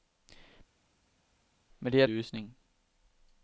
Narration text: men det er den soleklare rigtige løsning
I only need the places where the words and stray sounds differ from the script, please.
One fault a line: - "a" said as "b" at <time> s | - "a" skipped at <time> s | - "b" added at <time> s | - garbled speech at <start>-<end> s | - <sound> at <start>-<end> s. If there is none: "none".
- "den soleklare rigtige" skipped at 2.1 s